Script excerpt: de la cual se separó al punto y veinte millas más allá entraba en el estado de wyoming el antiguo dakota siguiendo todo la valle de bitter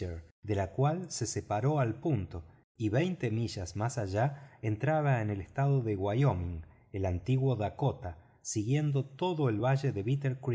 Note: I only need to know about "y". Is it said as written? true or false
true